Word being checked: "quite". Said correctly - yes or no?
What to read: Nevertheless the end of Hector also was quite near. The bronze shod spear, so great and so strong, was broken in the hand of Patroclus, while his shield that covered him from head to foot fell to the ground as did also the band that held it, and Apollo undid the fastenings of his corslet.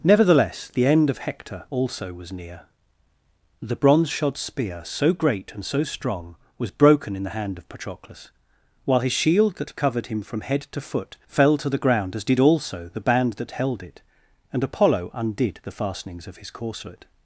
no